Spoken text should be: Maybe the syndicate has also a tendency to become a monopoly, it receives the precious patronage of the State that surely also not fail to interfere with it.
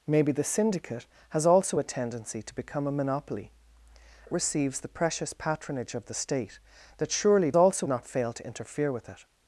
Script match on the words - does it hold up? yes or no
yes